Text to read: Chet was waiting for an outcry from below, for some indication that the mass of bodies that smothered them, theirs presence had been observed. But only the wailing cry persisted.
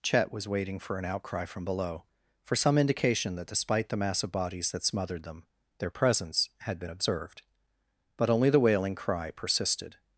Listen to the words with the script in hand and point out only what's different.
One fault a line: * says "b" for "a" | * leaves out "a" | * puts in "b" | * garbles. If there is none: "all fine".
* puts in "despite"
* says "their" for "theirs"